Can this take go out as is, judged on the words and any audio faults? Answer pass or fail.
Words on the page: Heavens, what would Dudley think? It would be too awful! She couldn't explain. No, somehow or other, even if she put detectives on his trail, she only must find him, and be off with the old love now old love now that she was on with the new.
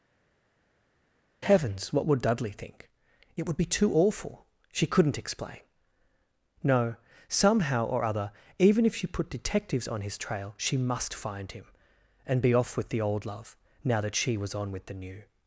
fail